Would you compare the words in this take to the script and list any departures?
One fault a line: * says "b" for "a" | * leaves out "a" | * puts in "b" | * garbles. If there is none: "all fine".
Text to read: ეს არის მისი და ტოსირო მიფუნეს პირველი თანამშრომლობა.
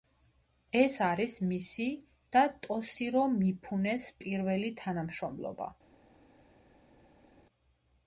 all fine